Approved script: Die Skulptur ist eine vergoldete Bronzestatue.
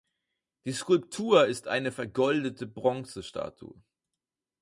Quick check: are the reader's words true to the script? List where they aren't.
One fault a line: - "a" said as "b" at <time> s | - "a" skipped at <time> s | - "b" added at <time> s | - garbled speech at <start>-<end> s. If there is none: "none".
none